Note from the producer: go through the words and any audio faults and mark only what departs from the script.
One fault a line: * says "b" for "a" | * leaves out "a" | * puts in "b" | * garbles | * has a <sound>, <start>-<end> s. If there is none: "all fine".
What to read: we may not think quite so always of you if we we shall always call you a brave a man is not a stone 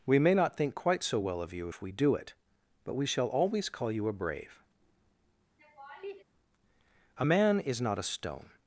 * says "well" for "always"
* puts in "do it but"
* has a laugh, 5.6-6.2 s